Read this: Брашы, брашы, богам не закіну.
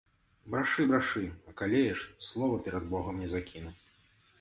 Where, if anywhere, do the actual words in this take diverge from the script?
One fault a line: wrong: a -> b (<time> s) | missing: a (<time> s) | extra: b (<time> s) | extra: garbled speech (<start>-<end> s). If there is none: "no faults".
extra: акалееш слова перад (1.5 s)